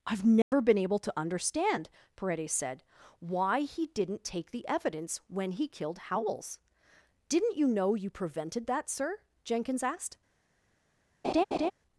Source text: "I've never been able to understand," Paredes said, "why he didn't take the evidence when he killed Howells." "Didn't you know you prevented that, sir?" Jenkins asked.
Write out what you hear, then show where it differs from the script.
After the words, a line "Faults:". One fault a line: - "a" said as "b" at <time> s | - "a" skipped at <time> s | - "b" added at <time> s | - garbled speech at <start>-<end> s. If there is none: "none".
"I've never been able to understand," Paredes said, "why he didn't take the evidence when he killed Howells." "Didn't you know you prevented that, sir?" Jenkins asked.
Faults:
none